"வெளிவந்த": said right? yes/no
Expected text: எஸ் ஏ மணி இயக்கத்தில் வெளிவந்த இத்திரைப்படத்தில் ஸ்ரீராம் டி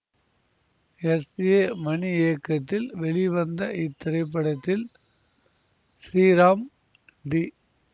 yes